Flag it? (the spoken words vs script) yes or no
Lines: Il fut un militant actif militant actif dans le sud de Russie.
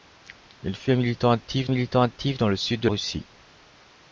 no